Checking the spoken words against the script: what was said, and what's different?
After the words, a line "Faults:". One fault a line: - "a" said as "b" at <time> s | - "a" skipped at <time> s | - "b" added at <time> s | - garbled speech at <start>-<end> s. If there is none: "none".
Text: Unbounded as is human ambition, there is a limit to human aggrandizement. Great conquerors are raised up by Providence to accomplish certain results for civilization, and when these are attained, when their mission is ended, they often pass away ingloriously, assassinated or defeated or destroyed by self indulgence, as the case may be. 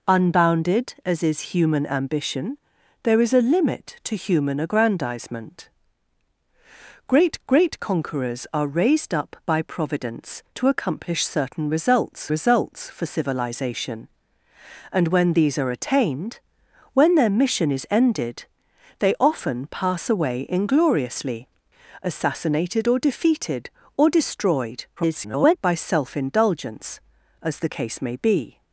Unbounded as is human ambition, there is a limit to human aggrandizement. Great great conquerors are raised up by Providence to accomplish certain results results for civilization, and when these are attained, when their mission is ended, they often pass away ingloriously, assassinated or defeated or destroyed [garbled] by self indulgence, as the case may be.
Faults:
- "great" added at 7.4 s
- "results" added at 12.3 s
- garbled speech at 25.0-25.6 s